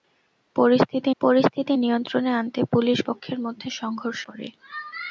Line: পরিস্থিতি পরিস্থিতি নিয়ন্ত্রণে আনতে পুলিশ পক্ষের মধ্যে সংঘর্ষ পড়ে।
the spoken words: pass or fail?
pass